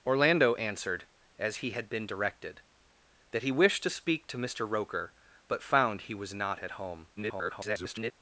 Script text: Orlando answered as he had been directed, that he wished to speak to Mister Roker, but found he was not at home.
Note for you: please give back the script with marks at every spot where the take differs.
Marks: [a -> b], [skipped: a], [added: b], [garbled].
Orlando answered as he had been directed, that he wished to speak to Mister Roker, but found he was not at home. [garbled]